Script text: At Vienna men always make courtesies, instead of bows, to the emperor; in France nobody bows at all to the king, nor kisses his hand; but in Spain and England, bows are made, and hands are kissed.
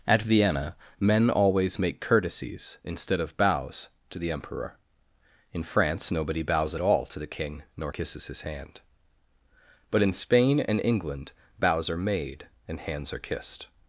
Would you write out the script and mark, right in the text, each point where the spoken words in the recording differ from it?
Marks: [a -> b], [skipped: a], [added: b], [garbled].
At Vienna men always make courtesies, instead of bows, to the emperor; in France nobody bows at all to the king, nor kisses his hand; but in Spain and England, bows are made, and hands are kissed.